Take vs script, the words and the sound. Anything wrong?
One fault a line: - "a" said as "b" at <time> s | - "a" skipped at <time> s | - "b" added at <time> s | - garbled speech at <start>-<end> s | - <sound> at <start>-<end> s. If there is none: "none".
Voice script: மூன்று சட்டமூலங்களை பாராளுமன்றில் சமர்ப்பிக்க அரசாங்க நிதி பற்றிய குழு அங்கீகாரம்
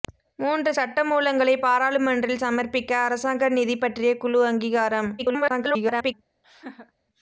- garbled speech at 5.2-6.1 s
- laugh at 6.4-6.9 s